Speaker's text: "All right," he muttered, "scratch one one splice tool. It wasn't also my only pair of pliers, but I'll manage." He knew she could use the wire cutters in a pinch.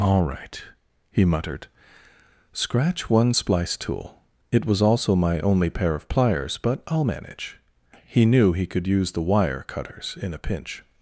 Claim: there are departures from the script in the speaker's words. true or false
true